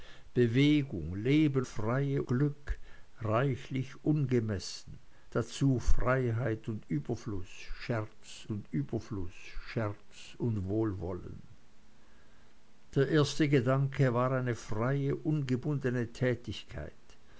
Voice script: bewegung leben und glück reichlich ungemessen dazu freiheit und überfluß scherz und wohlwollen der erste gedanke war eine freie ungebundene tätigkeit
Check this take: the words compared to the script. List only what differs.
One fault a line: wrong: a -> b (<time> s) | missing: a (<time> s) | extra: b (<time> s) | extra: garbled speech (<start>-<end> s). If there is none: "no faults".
wrong: und -> freie (1.6 s)
extra: überfluß scherz und (8.7 s)